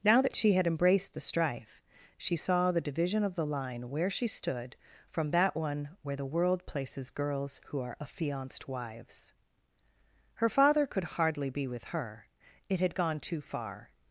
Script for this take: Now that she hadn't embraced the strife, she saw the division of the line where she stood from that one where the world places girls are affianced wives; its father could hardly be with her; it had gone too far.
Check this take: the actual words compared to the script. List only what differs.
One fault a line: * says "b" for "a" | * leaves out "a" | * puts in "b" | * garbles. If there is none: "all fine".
* says "had" for "hadn't"
* puts in "who"
* says "her" for "its"